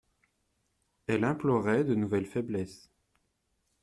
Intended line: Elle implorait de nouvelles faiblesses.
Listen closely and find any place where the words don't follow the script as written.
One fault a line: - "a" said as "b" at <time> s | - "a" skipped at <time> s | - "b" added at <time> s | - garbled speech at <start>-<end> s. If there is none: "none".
none